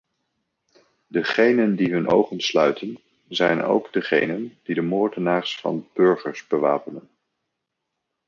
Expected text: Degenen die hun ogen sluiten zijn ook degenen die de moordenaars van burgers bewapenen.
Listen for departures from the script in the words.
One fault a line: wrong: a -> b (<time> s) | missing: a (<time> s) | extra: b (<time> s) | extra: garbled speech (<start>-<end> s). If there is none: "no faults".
no faults